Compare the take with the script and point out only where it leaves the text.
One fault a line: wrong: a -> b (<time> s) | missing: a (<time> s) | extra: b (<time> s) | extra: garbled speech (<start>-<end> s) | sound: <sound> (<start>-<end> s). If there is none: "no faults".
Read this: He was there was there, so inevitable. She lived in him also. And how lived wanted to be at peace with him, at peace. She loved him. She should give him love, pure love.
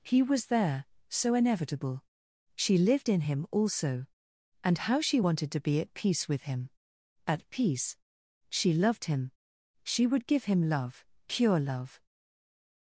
missing: was there (0.9 s)
wrong: lived -> she (5.0 s)
wrong: should -> would (10.1 s)